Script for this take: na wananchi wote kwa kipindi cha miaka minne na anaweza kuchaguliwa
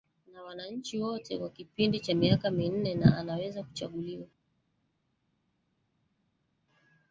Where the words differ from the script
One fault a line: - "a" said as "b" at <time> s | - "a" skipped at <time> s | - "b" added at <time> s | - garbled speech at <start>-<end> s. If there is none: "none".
none